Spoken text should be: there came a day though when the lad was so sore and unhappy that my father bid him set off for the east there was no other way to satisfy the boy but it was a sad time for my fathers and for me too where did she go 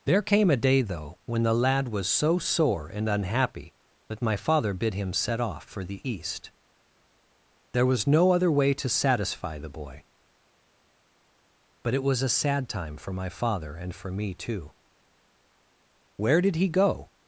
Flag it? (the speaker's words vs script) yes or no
yes